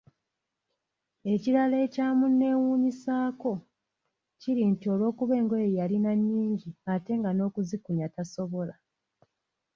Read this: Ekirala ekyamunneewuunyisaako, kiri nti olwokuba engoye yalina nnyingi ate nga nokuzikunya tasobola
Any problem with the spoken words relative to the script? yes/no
no